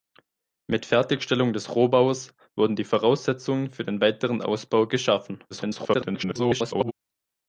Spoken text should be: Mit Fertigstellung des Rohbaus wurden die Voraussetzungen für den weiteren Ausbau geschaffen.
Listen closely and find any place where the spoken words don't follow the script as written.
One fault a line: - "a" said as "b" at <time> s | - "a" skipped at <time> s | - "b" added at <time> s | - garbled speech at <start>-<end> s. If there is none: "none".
- garbled speech at 5.5-6.9 s